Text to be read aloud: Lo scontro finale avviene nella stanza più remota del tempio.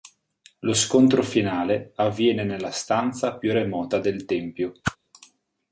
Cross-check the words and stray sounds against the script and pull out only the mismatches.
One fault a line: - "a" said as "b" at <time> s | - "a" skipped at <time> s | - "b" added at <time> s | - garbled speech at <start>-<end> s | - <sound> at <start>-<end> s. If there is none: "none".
- whoosh at 4.8-5.0 s